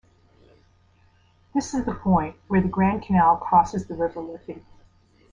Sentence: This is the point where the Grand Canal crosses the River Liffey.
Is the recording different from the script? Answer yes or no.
no